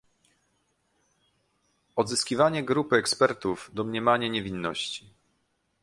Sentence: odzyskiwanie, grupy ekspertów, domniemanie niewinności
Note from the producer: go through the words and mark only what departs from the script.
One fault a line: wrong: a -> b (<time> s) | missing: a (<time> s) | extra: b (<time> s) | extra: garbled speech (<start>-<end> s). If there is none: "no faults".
no faults